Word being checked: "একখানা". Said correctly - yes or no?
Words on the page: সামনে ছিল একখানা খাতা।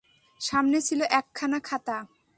yes